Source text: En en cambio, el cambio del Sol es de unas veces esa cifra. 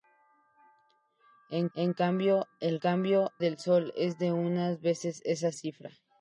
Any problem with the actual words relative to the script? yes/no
no